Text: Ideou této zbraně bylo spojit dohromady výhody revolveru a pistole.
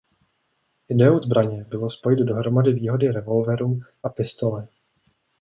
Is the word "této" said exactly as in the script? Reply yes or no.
no